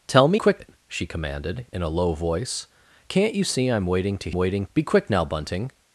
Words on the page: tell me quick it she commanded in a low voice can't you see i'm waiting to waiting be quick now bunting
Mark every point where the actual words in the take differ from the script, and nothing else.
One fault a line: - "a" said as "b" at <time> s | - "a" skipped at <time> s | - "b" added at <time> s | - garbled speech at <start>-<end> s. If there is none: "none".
none